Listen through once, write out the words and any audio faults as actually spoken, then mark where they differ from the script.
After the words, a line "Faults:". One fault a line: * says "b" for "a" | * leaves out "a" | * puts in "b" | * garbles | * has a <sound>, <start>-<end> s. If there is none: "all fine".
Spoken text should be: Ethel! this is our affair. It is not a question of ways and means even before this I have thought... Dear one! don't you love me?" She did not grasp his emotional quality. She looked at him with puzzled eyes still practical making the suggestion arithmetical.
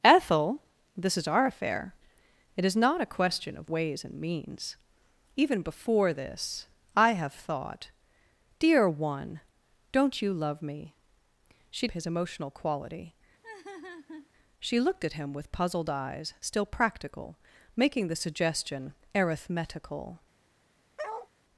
Ethel! this is our affair. It is not a question of ways and means even before this I have thought... Dear one! don't you love me?" She his emotional quality. She looked at him with puzzled eyes still practical making the suggestion arithmetical.
Faults:
* leaves out "did not grasp"
* has a laugh, 13.4-14.3 s
* has a bark, 21.0-21.3 s